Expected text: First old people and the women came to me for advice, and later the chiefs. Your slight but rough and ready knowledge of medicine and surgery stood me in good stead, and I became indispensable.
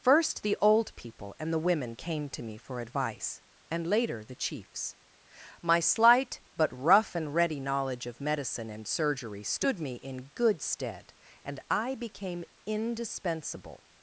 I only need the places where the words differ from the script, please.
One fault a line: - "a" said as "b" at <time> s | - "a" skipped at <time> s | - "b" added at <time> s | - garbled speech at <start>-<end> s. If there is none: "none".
- "the" added at 0.4 s
- "Your" said as "My" at 5.6 s